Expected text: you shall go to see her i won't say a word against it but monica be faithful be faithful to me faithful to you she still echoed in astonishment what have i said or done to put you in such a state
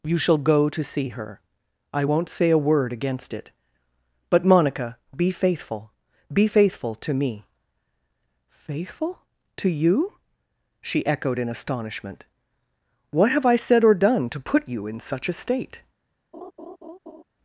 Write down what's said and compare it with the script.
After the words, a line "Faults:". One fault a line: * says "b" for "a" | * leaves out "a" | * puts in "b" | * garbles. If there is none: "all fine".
you shall go to see her i won't say a word against it but monica be faithful be faithful to me faithful to you she echoed in astonishment what have i said or done to put you in such a state
Faults:
* leaves out "still"